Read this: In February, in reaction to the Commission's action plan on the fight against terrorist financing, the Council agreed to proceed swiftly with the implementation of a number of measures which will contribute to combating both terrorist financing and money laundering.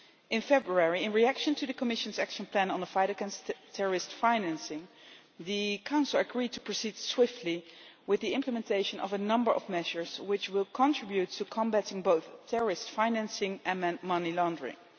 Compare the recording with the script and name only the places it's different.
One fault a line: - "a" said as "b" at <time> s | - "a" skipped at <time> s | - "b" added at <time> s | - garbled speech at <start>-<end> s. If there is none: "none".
none